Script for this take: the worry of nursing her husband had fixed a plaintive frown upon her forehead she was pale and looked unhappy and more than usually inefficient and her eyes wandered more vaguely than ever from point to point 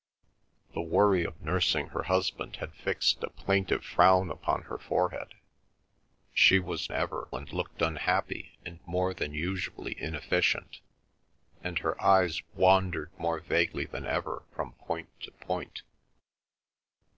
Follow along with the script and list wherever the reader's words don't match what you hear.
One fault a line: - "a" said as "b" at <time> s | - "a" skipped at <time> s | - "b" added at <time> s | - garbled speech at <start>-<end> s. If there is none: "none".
- "pale" said as "ever" at 6.9 s